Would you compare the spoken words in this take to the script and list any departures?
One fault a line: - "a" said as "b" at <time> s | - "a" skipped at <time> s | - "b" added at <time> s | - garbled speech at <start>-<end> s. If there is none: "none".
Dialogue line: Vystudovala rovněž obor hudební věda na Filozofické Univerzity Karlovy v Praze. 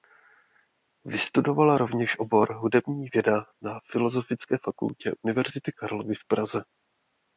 - "fakultě" added at 4.6 s